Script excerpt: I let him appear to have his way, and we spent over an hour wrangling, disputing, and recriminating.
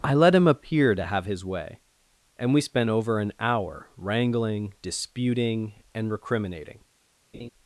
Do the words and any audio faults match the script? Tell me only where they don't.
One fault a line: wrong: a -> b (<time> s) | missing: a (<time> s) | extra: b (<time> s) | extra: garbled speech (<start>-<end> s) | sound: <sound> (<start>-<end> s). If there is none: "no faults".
sound: laugh (7.3-7.5 s)